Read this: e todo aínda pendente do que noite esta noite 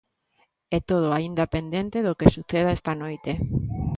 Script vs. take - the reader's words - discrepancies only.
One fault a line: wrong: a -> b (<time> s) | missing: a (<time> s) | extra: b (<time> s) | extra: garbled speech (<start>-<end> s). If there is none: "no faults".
wrong: noite -> suceda (2.4 s)